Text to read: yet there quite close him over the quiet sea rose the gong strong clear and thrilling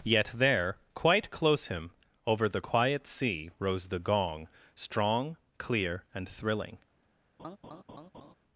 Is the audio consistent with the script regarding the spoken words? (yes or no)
yes